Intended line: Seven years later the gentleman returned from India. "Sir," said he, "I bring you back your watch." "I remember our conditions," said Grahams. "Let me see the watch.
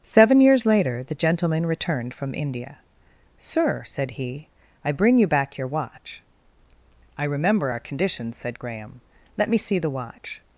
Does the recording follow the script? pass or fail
fail